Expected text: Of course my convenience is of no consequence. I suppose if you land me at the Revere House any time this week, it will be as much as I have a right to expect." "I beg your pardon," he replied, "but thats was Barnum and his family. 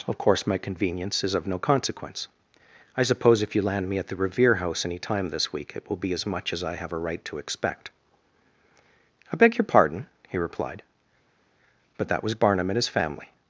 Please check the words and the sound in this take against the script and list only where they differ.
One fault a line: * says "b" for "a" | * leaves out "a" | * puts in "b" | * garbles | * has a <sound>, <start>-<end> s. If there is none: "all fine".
* says "that" for "thats"